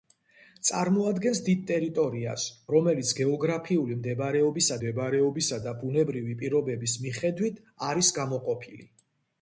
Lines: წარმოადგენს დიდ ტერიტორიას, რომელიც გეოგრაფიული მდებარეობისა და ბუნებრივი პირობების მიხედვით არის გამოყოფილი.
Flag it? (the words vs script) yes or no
yes